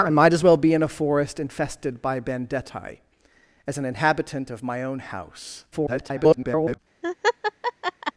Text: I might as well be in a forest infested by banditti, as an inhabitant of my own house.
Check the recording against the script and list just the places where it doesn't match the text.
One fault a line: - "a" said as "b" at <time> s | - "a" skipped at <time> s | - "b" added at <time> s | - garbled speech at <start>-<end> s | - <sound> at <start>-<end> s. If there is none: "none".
- garbled speech at 5.7-6.8 s
- laugh at 7.0-8.1 s